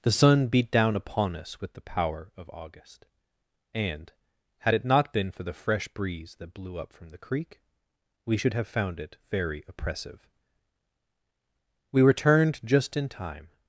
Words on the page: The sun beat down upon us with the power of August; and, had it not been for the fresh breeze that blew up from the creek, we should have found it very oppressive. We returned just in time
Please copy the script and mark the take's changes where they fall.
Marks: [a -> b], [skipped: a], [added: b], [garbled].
The sun beat down upon us with the power of August; and, had it not been for the fresh breeze that blew up from the creek, we should have found it very oppressive. We returned just in time